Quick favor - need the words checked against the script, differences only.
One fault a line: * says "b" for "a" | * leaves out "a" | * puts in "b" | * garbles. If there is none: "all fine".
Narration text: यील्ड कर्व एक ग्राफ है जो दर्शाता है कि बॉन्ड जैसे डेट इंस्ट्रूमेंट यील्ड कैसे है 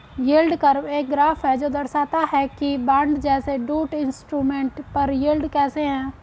* puts in "पर"